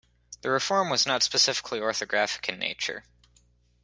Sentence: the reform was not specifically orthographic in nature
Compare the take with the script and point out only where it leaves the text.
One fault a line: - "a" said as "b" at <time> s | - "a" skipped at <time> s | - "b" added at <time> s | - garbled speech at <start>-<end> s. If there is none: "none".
none